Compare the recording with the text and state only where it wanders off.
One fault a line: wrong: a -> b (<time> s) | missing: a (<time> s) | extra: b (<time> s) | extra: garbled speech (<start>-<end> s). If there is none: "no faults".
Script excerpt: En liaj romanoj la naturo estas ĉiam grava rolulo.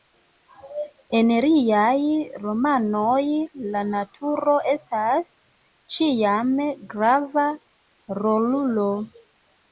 no faults